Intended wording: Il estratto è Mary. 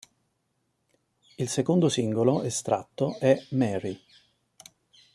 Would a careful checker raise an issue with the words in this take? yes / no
yes